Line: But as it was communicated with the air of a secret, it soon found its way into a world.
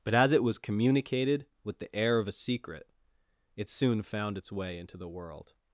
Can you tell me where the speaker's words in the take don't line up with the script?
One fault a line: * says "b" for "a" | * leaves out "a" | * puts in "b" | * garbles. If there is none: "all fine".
* says "the" for "a"